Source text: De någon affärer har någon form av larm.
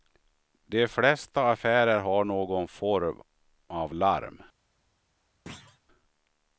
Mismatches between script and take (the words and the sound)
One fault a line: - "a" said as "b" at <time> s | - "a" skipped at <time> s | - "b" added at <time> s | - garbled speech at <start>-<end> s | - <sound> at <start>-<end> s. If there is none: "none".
- "någon" said as "flesta" at 0.9 s
- thud at 5.5-5.8 s